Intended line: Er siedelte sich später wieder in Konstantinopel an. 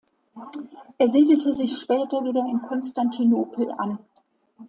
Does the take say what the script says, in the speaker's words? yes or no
yes